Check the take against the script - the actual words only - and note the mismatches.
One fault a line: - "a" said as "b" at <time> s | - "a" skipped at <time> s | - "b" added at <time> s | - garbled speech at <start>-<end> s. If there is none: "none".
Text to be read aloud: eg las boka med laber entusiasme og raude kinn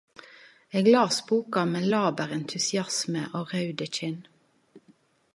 none